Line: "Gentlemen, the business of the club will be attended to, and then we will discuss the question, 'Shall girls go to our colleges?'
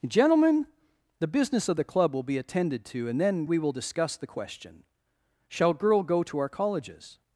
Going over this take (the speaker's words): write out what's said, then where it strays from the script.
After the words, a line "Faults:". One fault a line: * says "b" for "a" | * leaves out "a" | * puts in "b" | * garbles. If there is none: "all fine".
"Gentlemen, the business of the club will be attended to, and then we will discuss the question, 'Shall girl go to our colleges?'
Faults:
* says "girl" for "girls"